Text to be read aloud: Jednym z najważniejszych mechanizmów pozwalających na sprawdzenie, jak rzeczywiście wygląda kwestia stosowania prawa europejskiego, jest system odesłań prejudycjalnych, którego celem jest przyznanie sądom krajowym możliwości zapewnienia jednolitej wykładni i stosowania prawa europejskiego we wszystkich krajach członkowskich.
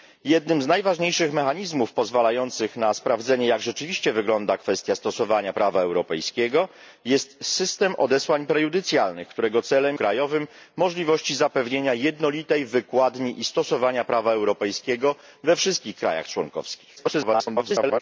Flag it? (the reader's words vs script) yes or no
yes